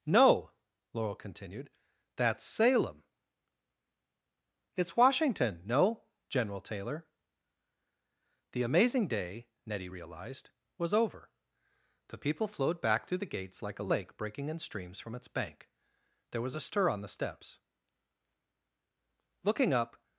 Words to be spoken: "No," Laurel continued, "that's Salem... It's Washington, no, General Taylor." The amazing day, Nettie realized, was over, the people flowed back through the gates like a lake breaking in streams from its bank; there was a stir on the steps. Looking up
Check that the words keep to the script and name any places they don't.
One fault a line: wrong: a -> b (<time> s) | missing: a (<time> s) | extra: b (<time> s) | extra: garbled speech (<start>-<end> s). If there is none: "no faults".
no faults